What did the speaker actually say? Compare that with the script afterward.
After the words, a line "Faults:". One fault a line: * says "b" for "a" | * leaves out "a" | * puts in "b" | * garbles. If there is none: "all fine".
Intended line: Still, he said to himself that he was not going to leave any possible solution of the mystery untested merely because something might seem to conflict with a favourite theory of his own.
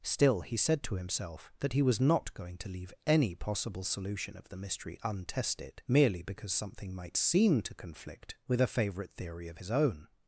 Still, he said to himself that he was not going to leave any possible solution of the mystery untested merely because something might seem to conflict with a favourite theory of his own.
Faults:
all fine